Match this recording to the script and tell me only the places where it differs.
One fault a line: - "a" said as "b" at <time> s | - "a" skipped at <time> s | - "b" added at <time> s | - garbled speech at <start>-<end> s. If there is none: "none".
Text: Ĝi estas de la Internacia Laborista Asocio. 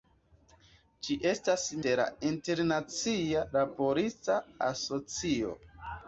none